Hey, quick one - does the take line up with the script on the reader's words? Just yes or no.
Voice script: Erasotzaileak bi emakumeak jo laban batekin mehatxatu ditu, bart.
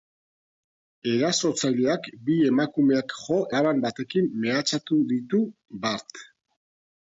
yes